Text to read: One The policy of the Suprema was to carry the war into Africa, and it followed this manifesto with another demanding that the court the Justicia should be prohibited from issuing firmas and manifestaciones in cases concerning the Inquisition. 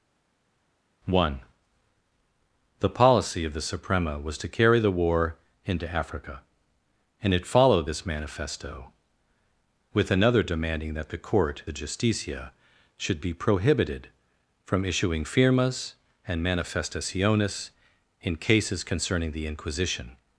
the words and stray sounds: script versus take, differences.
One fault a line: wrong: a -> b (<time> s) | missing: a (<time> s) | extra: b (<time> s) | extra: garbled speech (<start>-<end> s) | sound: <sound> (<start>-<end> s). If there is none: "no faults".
no faults